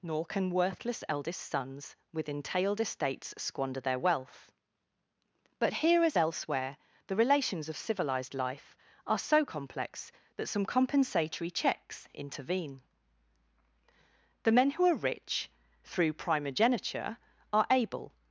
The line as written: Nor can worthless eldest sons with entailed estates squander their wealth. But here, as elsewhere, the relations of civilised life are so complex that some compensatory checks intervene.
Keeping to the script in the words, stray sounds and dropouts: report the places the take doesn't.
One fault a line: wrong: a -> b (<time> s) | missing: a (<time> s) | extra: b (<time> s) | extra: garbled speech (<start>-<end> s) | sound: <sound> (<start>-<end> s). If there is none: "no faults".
extra: The men who are rich through primogeniture are able (14.4 s)